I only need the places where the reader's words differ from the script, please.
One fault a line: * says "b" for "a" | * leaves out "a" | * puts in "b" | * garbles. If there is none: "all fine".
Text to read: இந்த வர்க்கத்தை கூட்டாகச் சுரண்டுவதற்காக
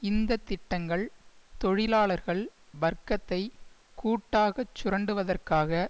* puts in "திட்டங்கள் தொழிலாளர்கள்"